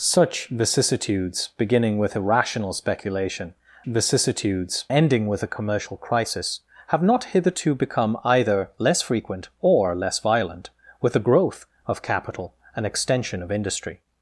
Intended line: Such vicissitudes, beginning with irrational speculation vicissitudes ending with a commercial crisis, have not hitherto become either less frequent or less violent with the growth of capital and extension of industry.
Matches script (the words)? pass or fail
pass